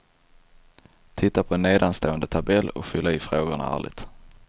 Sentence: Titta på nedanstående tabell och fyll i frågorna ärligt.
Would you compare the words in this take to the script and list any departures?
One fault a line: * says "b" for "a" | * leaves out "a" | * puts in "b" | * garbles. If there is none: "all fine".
all fine